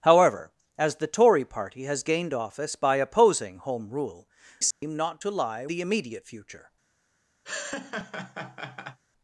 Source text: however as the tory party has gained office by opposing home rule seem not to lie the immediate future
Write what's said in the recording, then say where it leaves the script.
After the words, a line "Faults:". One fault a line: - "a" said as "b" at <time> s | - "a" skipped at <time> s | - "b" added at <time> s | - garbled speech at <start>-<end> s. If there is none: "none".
however as the tory party has gained office by opposing home rule seem not to lie the immediate future
Faults:
none